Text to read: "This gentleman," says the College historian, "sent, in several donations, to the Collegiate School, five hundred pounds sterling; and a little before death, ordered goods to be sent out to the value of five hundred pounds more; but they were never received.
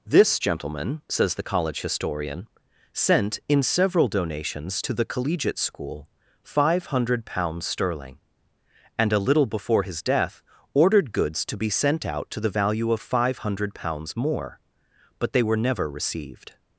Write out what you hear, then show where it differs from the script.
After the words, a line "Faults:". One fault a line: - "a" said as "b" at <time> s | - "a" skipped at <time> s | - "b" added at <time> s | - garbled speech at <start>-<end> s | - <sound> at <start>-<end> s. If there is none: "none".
"This gentleman," says the College historian, "sent, in several donations, to the Collegiate School, five hundred pounds sterling; and a little before his death, ordered goods to be sent out to the value of five hundred pounds more; but they were never received.
Faults:
- "his" added at 9.8 s